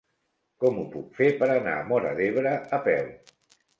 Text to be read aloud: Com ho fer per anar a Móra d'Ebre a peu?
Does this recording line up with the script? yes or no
no